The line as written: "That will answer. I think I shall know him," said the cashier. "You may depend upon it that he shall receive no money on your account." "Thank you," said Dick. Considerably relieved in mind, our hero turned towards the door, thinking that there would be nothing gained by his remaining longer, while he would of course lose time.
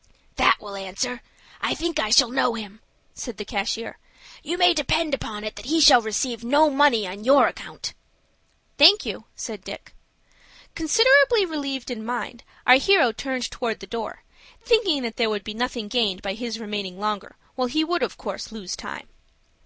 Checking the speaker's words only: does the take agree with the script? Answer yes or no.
yes